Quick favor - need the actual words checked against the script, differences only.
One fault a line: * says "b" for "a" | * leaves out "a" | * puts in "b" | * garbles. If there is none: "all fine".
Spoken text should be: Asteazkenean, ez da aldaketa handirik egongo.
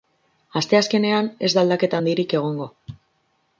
all fine